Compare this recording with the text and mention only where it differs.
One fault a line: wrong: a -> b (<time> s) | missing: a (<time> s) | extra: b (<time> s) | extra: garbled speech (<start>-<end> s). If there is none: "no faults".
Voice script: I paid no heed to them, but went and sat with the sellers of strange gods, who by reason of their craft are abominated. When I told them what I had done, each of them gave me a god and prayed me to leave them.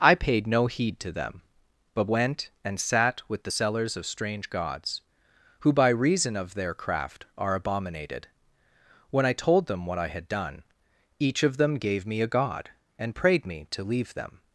no faults